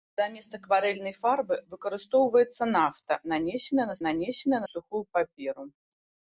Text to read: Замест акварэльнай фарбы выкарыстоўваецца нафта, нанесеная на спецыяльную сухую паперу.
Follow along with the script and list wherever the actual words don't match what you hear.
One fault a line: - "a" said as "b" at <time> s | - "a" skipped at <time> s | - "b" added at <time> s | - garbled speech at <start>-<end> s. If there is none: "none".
- "спецыяльную" said as "нанесеная" at 4.1 s